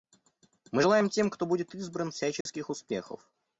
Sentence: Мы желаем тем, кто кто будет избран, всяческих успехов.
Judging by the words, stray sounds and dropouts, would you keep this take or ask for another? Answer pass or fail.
fail